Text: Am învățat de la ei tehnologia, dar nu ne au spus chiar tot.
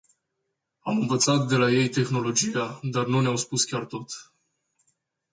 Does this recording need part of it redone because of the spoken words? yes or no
no